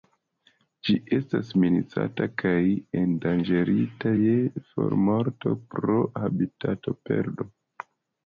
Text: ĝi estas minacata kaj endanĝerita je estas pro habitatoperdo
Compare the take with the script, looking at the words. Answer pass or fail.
fail